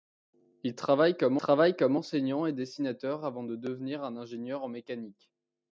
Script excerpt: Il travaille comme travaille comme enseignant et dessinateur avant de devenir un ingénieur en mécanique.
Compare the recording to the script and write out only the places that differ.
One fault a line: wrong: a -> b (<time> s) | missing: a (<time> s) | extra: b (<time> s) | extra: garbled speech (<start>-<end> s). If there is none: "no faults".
no faults